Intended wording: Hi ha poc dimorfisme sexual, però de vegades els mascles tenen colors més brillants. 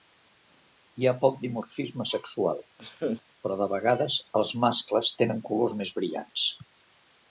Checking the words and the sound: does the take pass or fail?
fail